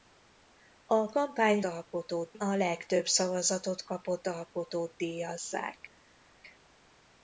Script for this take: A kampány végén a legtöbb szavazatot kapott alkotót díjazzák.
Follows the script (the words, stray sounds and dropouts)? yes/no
no